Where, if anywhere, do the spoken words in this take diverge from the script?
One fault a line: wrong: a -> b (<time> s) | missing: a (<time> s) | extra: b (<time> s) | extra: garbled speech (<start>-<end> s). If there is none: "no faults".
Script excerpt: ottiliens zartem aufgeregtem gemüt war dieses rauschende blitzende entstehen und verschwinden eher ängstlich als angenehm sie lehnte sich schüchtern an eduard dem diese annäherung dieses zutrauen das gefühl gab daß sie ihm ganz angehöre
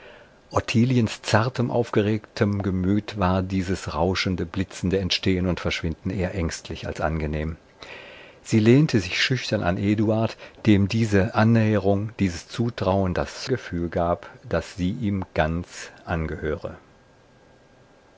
no faults